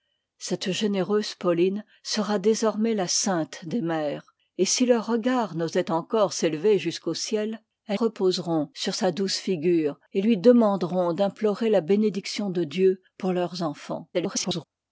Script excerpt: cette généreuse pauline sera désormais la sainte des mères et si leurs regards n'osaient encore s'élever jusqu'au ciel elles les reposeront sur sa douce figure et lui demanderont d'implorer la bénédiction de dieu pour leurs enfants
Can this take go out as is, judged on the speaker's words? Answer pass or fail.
fail